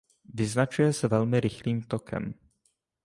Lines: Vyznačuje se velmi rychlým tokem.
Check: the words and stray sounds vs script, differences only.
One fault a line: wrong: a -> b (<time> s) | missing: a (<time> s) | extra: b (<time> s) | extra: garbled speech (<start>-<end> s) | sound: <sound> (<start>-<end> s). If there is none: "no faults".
no faults